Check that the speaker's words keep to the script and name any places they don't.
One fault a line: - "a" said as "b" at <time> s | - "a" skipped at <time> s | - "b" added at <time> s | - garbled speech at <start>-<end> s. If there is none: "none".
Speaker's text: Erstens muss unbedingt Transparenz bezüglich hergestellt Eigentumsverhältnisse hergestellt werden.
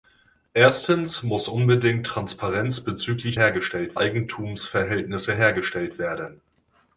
none